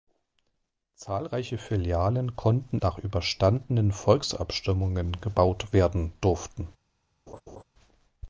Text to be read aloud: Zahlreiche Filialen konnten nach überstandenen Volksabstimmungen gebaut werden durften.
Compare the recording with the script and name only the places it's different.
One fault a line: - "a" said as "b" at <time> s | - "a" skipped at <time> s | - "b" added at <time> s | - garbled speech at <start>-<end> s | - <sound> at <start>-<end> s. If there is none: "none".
- laugh at 7.3-7.6 s